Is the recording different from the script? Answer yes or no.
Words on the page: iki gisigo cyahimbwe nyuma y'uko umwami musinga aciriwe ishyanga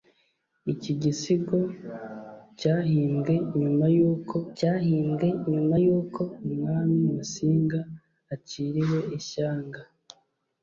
yes